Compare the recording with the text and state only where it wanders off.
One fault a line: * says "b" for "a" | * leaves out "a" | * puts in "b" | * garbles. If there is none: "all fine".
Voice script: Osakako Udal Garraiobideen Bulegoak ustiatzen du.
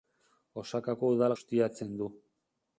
* leaves out "Garraiobideen Bulegoak"